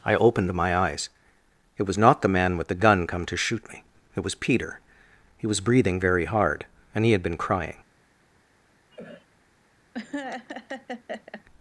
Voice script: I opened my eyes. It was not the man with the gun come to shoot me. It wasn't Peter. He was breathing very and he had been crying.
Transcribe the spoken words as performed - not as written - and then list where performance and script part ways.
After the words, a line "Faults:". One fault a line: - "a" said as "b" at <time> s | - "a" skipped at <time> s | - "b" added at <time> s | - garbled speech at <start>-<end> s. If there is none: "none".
I opened my eyes. It was not the man with the gun come to shoot me. It was Peter. He was breathing very hard, and he had been crying.
Faults:
- "wasn't" said as "was" at 4.2 s
- "hard" added at 6.2 s